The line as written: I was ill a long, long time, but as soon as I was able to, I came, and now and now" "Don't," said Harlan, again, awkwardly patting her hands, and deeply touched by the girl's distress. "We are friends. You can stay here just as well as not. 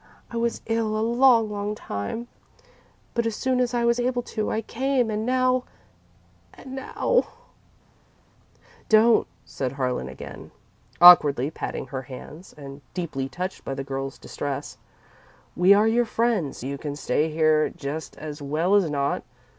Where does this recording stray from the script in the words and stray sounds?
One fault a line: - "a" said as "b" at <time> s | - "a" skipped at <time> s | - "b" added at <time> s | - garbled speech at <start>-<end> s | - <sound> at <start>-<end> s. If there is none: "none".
- "your" added at 15.9 s